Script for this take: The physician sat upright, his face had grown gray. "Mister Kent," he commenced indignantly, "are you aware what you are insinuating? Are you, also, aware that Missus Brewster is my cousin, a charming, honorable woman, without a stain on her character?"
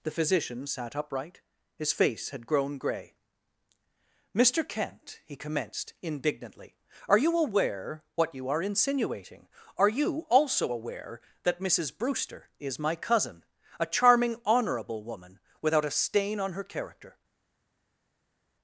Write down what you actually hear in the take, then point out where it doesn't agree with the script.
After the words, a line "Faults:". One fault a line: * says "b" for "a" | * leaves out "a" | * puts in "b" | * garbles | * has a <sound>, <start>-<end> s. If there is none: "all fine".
The physician sat upright, his face had grown gray. "Mister Kent," he commenced indignantly, "are you aware what you are insinuating? Are you, also, aware that Missus Brewster is my cousin, a charming, honorable woman, without a stain on her character?"
Faults:
all fine